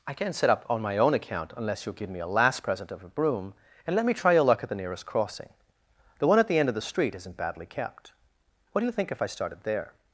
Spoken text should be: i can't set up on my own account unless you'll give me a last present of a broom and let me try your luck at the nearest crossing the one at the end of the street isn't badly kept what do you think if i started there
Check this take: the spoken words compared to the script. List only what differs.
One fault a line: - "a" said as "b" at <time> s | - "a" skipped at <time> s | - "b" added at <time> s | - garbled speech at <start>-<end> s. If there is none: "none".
none